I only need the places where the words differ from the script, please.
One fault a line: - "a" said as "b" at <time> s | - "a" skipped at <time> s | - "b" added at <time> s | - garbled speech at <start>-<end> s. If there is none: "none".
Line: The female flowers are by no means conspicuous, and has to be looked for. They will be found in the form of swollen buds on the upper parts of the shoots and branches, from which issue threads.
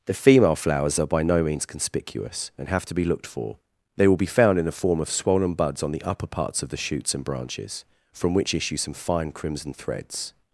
- "has" said as "have" at 2.7 s
- "some fine crimson" added at 8.8 s